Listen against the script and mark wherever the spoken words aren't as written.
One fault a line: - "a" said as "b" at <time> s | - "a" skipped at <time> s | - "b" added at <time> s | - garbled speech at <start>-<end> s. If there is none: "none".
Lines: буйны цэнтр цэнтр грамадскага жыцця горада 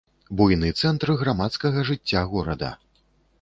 - "цэнтр" skipped at 1.1 s